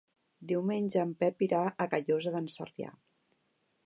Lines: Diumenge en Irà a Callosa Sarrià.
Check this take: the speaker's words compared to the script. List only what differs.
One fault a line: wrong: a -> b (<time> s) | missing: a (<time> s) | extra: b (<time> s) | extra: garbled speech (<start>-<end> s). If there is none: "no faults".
extra: Pep (1.2 s)
extra: d'en (2.4 s)